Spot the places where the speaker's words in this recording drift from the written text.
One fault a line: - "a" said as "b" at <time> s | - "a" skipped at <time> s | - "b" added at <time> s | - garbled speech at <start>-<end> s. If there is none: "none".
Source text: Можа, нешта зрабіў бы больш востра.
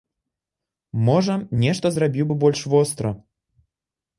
none